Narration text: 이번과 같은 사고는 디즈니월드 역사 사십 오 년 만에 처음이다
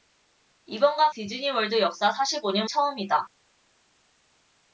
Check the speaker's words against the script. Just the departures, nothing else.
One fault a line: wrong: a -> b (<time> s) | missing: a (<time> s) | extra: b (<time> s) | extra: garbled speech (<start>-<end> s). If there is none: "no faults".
missing: 같은 사고는 (1.1 s)
missing: 만에 (2.7 s)